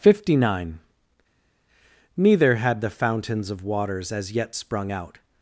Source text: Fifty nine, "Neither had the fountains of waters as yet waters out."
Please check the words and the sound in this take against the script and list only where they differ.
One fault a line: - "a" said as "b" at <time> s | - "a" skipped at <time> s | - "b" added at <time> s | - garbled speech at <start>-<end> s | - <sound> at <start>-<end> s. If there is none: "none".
- "waters" said as "sprung" at 4.5 s